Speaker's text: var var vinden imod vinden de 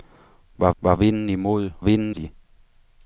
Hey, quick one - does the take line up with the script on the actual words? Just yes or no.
yes